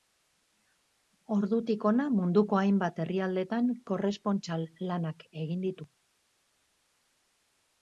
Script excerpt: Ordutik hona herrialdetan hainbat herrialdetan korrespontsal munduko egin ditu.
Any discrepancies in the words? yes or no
yes